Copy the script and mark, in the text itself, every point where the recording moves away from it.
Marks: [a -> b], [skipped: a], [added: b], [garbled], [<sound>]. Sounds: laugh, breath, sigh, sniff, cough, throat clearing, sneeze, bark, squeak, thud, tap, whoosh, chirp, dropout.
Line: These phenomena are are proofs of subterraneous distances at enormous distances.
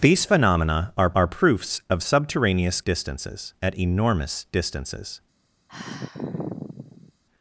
These phenomena are are proofs of subterraneous distances at enormous distances. [sigh]